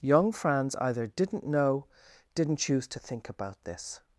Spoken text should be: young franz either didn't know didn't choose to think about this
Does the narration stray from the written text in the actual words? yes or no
no